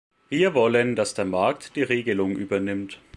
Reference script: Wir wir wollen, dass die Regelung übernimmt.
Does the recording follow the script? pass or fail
fail